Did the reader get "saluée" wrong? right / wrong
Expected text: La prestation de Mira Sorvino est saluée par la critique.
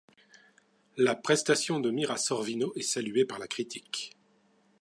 right